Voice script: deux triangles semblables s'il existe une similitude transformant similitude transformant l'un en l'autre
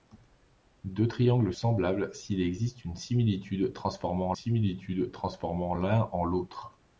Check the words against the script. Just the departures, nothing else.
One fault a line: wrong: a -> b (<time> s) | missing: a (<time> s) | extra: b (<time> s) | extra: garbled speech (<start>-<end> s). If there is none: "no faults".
no faults